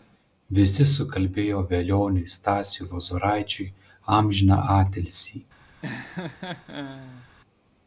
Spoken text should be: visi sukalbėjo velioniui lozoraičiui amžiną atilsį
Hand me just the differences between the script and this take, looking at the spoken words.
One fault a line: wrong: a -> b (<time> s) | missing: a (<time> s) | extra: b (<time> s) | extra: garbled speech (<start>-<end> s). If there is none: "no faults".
extra: stasiui (2.4 s)